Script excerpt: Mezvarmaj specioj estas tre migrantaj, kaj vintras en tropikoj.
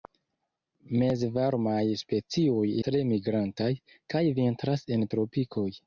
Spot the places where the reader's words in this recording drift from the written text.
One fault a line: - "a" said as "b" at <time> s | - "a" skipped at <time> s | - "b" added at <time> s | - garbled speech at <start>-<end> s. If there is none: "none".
- "estas" skipped at 2.6 s